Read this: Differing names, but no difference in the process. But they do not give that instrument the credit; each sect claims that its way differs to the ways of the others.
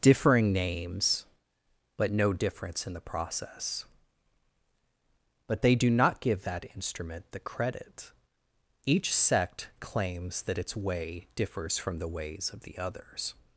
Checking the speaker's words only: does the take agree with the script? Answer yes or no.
no